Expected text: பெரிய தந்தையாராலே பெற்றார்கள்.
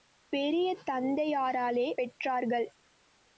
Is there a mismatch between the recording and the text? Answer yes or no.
no